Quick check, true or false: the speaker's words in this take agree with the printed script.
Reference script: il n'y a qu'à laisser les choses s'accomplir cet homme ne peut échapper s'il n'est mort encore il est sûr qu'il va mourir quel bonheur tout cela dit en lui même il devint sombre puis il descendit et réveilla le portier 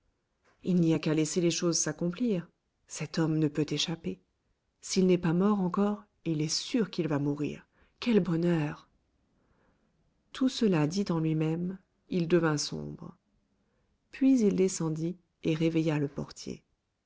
false